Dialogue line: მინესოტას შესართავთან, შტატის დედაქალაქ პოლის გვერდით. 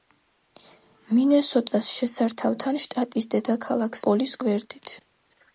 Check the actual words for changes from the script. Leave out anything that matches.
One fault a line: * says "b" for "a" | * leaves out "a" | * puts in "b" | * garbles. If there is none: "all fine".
all fine